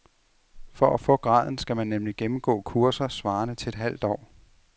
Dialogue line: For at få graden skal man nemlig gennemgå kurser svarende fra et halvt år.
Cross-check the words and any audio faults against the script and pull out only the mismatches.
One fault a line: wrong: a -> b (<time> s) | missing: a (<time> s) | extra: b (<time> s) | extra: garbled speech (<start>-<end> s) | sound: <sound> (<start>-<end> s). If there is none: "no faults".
wrong: fra -> til (3.5 s)